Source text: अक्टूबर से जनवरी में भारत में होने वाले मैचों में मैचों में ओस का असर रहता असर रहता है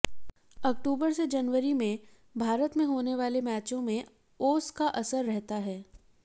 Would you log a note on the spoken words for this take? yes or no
yes